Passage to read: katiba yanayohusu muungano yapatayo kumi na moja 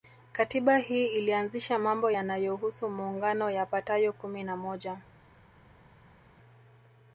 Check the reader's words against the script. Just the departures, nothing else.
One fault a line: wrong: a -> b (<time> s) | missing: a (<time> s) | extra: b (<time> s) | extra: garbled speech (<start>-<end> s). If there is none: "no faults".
extra: hii ilianzisha mambo (0.8 s)